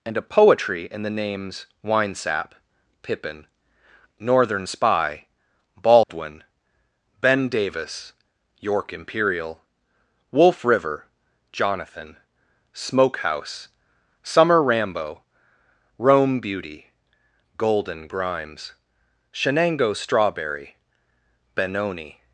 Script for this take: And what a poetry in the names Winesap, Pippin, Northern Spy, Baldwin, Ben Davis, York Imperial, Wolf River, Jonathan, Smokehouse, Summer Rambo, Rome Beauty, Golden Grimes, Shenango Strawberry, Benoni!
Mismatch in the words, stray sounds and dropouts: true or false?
true